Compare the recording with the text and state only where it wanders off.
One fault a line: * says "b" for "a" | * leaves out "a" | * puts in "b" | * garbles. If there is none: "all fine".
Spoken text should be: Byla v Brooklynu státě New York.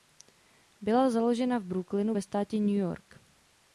* puts in "založena"
* puts in "ve"